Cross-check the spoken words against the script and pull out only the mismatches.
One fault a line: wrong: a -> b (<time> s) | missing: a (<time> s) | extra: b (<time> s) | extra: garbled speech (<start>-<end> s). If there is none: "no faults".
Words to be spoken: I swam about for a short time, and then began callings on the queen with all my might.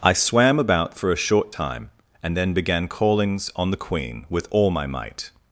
no faults